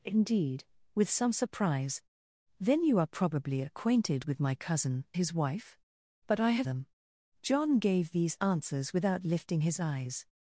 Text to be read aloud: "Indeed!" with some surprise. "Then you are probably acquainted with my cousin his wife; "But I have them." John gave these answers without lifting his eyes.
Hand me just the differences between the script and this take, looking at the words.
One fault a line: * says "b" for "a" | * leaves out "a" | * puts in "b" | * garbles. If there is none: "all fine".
all fine